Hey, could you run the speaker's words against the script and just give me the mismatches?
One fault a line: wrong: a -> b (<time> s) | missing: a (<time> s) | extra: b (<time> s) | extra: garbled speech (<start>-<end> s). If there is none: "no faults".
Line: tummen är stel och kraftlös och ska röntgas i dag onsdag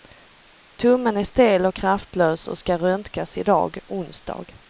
no faults